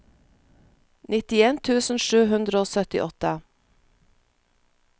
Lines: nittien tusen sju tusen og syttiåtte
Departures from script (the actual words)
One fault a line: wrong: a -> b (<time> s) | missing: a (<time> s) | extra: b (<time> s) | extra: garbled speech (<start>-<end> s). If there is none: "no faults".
wrong: tusen -> hundre (2.3 s)